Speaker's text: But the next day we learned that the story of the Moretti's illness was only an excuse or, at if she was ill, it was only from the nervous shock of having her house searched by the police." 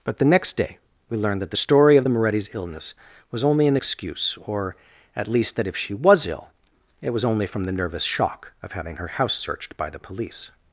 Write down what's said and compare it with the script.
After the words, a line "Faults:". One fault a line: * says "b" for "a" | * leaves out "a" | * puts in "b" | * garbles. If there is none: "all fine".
But the next day we learned that the story of the Moretti's illness was only an excuse or, at least, that if she was ill, it was only from the nervous shock of having her house searched by the police."
Faults:
* puts in "least that"